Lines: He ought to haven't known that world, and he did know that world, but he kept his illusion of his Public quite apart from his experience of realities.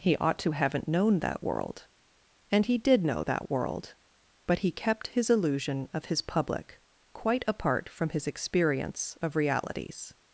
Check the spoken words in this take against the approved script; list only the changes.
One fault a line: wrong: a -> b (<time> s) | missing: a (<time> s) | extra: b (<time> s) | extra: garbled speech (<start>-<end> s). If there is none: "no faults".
no faults